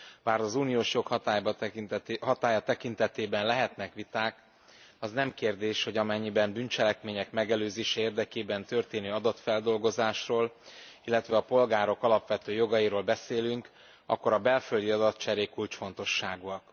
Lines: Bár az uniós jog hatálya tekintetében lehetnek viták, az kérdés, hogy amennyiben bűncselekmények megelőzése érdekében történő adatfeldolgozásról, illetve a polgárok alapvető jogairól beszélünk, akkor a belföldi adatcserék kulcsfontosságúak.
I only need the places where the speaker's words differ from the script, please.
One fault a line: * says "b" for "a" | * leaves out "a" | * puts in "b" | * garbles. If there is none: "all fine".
* puts in "nem"